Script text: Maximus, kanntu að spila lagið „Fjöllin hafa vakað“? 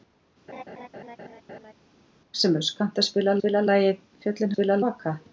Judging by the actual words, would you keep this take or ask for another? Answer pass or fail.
fail